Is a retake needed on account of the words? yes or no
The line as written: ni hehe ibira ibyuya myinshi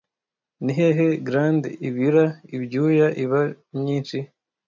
yes